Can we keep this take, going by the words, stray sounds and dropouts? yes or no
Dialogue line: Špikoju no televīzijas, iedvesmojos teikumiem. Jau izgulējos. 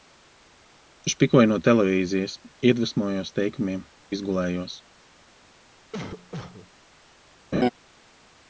no